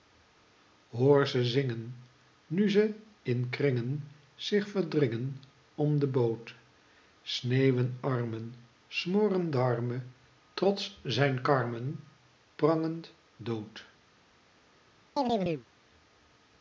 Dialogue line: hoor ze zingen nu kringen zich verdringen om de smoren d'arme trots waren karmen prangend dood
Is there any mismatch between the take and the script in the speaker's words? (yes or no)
yes